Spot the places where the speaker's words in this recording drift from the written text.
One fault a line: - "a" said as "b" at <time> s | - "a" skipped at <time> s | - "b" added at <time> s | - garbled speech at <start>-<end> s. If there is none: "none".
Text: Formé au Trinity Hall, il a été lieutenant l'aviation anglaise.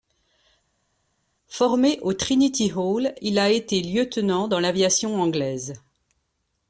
- "dans" added at 4.5 s